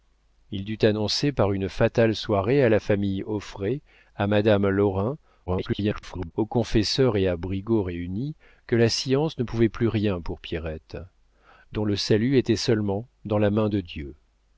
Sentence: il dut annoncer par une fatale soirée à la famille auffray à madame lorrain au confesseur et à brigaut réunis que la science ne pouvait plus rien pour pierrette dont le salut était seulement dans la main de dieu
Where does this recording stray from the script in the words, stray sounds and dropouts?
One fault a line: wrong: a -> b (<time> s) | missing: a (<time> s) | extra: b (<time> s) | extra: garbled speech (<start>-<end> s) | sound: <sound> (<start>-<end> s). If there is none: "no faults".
extra: garbled speech (5.5-6.3 s)